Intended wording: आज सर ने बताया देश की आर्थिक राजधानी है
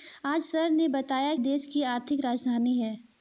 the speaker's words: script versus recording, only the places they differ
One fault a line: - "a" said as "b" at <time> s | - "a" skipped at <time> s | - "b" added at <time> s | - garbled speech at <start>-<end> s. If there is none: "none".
none